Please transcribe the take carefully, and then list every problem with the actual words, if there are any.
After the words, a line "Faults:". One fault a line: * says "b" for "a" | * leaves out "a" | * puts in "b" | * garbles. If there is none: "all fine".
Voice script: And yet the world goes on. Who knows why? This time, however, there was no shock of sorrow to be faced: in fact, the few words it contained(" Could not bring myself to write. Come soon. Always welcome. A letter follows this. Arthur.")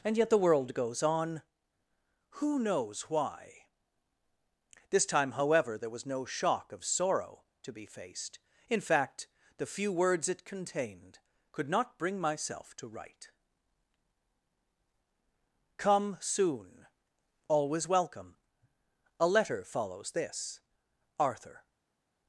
And yet the world goes on. Who knows why? This time, however, there was no shock of sorrow to be faced: in fact, the few words it contained(" Could not bring myself to write. Come soon. Always welcome. A letter follows this. Arthur.")
Faults:
all fine